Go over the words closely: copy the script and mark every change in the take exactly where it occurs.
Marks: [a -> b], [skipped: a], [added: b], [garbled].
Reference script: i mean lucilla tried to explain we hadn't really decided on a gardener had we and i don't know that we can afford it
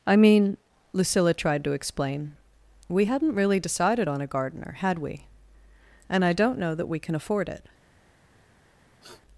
i mean lucilla tried to explain we hadn't really decided on a gardener had we and i don't know that we can afford it